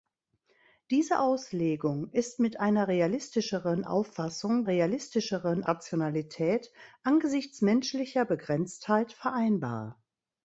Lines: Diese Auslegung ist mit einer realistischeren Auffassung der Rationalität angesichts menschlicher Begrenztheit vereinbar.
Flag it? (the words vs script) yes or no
yes